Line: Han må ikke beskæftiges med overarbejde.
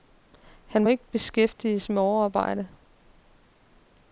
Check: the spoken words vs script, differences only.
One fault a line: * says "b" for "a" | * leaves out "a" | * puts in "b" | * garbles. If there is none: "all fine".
all fine